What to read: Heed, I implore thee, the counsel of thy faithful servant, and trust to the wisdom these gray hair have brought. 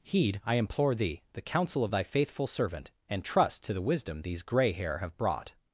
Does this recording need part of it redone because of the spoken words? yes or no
no